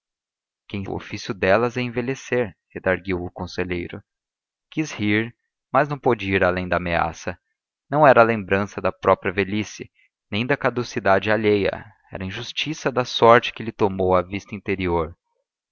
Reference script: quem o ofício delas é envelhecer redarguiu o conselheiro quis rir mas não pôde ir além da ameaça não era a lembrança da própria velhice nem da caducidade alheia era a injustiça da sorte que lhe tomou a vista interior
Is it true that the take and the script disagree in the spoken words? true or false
false